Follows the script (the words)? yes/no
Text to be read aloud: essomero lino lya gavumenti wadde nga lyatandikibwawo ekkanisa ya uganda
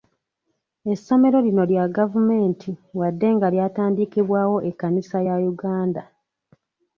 yes